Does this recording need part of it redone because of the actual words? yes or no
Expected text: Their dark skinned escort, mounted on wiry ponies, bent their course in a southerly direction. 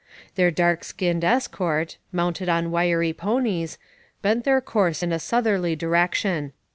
no